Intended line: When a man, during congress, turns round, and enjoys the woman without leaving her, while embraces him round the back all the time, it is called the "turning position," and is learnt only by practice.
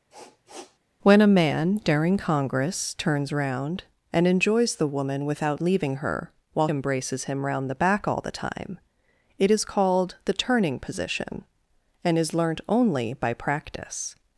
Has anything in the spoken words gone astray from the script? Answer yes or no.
no